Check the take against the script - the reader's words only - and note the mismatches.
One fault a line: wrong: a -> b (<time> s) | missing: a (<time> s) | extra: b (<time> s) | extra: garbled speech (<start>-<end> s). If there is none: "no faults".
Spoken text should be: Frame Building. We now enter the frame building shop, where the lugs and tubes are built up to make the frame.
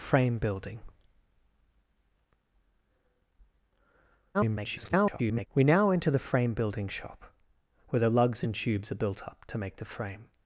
extra: garbled speech (4.3-5.5 s)